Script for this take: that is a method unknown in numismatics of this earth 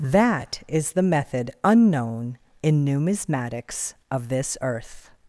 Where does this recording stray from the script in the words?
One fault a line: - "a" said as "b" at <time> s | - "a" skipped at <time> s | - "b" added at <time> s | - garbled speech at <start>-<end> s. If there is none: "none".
- "a" said as "the" at 0.9 s